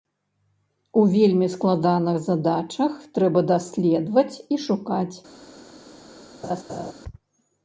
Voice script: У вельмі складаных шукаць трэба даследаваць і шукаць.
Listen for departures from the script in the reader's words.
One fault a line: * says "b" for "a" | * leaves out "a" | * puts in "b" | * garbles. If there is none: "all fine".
* says "задачах" for "шукаць"